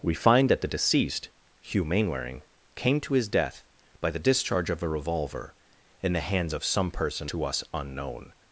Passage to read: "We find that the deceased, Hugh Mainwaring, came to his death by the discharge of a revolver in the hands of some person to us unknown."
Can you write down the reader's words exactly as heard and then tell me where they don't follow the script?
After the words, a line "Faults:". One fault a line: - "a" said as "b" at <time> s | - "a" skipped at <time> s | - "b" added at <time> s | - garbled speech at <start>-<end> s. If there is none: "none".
"We find that the deceased, Hugh Mainwaring, came to his death by the discharge of a revolver in the hands of some person to us unknown."
Faults:
none